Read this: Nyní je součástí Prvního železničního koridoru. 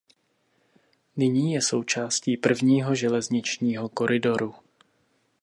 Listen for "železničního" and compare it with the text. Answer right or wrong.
right